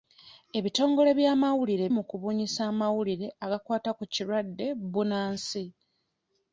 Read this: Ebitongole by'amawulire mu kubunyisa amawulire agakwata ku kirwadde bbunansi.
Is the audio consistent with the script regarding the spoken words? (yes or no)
yes